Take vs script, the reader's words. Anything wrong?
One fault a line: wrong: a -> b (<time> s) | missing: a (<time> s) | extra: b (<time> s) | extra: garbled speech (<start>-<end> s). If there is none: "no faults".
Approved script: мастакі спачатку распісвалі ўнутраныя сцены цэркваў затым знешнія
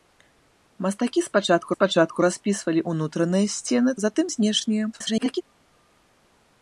extra: спачатку (1.7 s)
missing: цэркваў (3.9 s)
extra: garbled speech (4.9-5.4 s)